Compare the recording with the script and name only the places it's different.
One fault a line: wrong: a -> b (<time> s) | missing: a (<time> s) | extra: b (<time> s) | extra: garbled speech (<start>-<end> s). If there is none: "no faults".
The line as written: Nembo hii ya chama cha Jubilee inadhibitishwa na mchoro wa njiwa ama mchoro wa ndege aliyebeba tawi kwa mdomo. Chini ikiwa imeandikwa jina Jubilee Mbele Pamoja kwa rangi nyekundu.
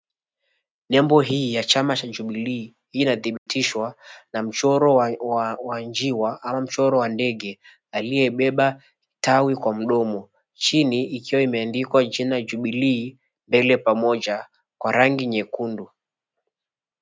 no faults